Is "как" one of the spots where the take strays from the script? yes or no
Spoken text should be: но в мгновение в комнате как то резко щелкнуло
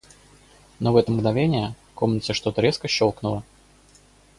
yes